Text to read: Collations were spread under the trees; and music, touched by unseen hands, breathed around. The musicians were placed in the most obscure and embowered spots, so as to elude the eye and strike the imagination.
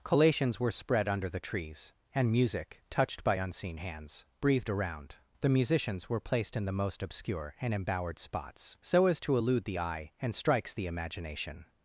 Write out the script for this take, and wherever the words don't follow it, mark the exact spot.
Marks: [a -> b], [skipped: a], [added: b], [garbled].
Collations were spread under the trees; and music, touched by unseen hands, breathed around. The musicians were placed in the most obscure and embowered spots, so as to elude the eye and [strike -> strikes] the imagination.